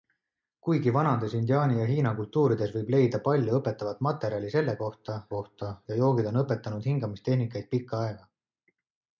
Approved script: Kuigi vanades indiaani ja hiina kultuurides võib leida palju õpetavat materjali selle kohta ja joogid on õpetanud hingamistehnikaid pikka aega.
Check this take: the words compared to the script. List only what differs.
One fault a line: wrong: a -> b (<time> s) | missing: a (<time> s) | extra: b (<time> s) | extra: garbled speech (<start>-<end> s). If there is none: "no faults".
extra: kohta (5.3 s)